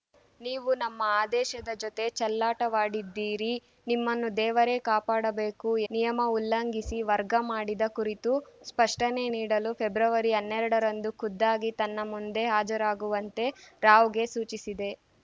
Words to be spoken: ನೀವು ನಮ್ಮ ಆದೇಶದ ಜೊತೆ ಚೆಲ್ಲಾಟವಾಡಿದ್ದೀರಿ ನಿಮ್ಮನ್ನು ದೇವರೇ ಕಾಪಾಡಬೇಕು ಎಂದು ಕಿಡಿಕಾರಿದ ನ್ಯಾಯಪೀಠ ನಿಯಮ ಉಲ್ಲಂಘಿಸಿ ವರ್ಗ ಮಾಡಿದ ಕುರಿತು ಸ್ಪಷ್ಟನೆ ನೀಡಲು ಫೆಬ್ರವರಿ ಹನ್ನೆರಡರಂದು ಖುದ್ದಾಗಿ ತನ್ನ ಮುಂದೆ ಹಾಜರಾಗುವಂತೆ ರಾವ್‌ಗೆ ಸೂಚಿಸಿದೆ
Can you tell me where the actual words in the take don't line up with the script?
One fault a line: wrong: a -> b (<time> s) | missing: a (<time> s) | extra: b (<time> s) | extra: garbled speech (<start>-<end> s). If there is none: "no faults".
missing: ಎಂದು ಕಿಡಿಕಾರಿದ ನ್ಯಾಯಪೀಠ (5.7 s)